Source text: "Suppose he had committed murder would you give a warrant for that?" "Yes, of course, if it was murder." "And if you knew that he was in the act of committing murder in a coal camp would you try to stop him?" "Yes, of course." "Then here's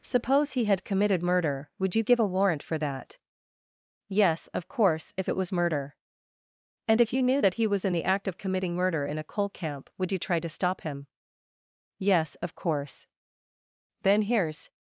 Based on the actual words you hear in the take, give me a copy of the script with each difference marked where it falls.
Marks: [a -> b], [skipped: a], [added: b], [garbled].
"Suppose he had committed murder would you give a warrant for that?" "Yes, of course, if it was murder." "And if you knew that he was in the act of committing murder in a coal camp would you try to stop him?" "Yes, of course." "Then here's